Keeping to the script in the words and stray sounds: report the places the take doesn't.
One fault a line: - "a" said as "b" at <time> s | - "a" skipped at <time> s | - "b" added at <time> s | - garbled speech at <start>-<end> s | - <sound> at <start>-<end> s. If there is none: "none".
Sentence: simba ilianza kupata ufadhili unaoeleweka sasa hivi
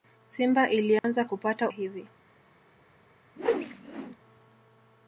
- dropout at 1.0-1.0 s
- "ufadhili unaoeleweka sasa" skipped at 1.7 s
- whoosh at 3.4-4.2 s